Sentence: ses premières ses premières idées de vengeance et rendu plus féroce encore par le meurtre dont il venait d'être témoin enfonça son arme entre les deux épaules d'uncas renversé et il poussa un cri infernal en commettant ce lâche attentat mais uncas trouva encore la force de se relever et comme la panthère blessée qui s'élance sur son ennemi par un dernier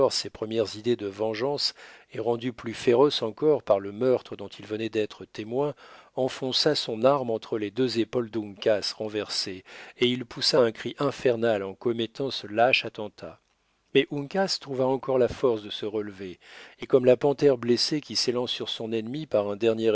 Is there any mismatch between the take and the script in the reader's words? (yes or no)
yes